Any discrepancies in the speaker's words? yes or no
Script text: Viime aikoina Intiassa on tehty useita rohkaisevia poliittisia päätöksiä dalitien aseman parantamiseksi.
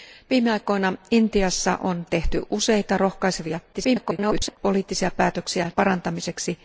yes